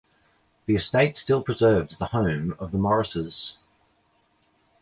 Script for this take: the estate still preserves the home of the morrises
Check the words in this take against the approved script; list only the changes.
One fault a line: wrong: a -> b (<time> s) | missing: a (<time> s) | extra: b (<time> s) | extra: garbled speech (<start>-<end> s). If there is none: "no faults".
no faults